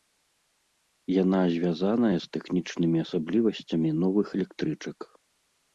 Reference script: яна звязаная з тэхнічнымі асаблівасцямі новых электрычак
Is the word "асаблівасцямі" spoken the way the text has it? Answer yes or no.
yes